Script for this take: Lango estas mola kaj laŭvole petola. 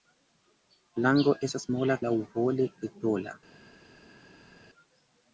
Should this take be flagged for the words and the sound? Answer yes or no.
yes